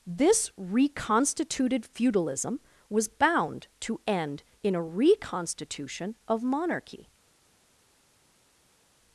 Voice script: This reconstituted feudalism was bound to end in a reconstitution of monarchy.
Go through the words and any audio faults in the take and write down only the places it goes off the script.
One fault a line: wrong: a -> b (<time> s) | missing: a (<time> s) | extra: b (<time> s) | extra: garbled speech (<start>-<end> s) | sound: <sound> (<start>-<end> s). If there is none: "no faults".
no faults